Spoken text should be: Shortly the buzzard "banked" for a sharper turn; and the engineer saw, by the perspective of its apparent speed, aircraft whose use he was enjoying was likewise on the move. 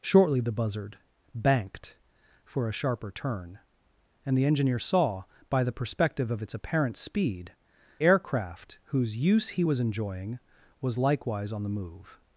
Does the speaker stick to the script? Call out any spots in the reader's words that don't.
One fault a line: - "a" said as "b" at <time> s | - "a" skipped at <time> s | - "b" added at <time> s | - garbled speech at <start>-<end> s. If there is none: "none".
none